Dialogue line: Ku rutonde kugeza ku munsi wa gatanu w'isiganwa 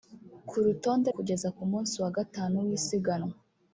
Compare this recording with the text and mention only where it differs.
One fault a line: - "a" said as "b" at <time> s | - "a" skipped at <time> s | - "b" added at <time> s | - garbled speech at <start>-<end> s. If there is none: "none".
none